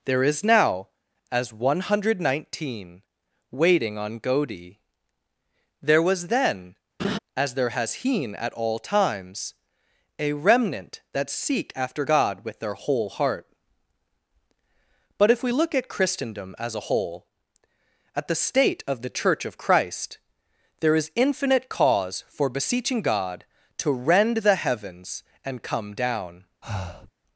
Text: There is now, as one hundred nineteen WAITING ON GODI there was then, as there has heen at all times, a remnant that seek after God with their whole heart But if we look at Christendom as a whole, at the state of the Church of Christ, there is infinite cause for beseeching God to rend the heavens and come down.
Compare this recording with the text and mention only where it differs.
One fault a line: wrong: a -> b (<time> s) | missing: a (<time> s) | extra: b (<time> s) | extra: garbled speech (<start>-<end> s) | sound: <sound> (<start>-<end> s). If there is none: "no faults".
sound: laugh (7.0-7.2 s)
sound: breath (26.6-27.1 s)